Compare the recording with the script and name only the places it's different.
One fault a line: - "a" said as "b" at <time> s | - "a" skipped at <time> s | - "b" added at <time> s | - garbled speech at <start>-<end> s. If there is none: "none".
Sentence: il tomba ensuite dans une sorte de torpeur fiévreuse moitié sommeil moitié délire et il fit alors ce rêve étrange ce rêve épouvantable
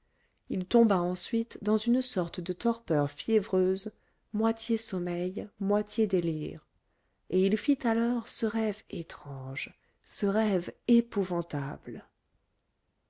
none